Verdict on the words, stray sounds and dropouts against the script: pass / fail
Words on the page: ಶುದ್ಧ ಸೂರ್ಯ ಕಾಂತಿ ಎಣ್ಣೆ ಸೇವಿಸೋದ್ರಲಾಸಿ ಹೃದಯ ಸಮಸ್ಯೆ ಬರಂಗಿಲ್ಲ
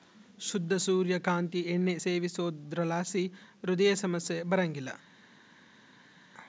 pass